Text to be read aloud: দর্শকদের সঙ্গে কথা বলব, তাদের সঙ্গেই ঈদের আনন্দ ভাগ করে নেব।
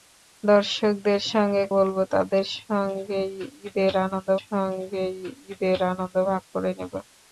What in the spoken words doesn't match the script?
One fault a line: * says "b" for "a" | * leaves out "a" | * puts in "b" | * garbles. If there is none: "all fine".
* leaves out "কথা"
* puts in "সঙ্গেই ঈদের আনন্দ"